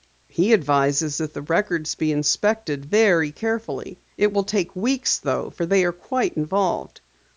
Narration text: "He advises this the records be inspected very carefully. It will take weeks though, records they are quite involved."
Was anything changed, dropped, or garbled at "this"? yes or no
yes